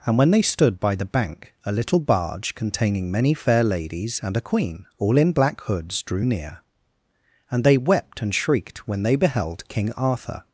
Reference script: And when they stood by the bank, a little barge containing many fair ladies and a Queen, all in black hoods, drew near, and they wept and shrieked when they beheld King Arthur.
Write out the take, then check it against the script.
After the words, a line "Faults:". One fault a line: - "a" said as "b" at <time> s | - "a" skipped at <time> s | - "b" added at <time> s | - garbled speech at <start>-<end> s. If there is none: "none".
And when they stood by the bank, a little barge containing many fair ladies and a Queen, all in black hoods, drew near, and they wept and shrieked when they beheld King Arthur.
Faults:
none